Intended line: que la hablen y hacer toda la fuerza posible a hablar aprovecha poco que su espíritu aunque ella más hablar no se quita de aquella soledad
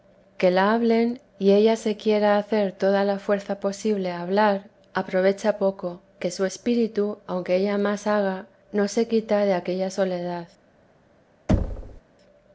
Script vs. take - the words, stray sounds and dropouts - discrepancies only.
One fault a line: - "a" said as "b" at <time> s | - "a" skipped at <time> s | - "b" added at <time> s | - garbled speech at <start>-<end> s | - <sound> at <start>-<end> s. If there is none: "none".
- "ella se quiera" added at 1.5 s
- "hablar" said as "haga" at 8.1 s
- thud at 11.5-12.0 s